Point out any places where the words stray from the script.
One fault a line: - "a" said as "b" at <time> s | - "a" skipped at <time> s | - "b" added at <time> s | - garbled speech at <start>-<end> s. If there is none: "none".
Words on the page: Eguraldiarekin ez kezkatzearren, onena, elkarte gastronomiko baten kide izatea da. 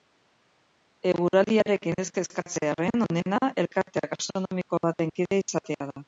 none